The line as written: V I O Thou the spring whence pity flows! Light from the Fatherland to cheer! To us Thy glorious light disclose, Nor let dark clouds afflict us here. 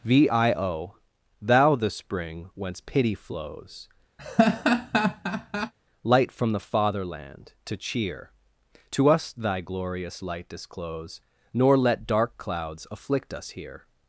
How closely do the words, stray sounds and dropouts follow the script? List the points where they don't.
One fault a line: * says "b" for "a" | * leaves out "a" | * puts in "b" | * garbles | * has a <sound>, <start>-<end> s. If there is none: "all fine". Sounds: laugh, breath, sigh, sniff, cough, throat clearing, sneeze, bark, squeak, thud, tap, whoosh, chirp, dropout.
* has a laugh, 4.2-5.7 s